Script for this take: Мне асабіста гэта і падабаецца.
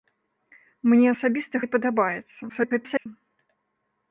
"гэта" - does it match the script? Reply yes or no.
no